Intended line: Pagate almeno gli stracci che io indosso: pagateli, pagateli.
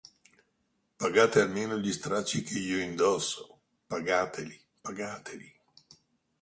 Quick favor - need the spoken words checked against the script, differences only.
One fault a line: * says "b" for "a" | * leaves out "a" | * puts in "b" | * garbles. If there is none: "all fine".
all fine